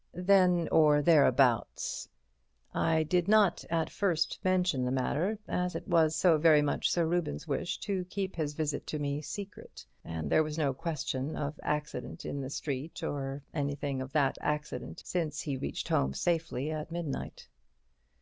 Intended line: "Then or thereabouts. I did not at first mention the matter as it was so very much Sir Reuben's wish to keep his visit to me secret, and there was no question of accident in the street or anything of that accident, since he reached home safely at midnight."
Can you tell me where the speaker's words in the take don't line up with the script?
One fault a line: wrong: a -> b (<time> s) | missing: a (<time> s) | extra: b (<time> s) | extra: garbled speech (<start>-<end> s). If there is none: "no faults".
no faults